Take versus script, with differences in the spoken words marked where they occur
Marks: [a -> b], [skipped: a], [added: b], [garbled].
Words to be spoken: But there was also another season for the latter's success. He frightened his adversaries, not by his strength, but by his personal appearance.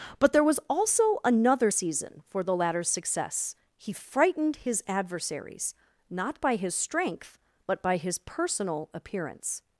But there was also another season for the latter's success. He frightened his adversaries, not by his strength, but by his personal appearance.